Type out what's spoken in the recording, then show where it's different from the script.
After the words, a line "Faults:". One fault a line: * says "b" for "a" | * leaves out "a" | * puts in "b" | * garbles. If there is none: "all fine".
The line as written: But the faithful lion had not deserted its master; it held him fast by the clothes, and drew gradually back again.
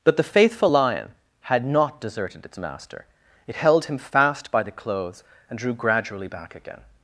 But the faithful lion had not deserted its master; it held him fast by the clothes, and drew gradually back again.
Faults:
all fine